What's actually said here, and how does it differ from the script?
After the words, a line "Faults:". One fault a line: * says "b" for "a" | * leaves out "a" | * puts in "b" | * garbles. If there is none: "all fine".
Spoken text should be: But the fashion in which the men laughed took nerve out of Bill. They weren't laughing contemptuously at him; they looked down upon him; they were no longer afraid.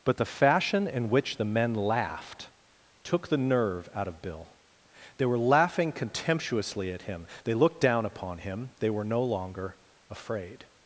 But the fashion in which the men laughed took the nerve out of Bill. They were laughing contemptuously at him; they looked down upon him; they were no longer afraid.
Faults:
* puts in "the"
* says "were" for "weren't"